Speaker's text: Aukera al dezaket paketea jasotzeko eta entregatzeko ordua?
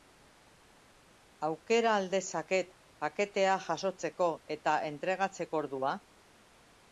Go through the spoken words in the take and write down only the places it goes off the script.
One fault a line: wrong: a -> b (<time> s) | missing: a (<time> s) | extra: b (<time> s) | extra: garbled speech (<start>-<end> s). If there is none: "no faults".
no faults